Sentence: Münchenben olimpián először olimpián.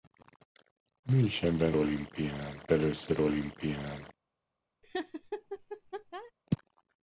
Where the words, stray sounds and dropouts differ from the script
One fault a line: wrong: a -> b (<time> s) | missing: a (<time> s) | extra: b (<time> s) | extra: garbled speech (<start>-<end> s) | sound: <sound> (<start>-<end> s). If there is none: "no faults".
sound: laugh (4.8-6.3 s)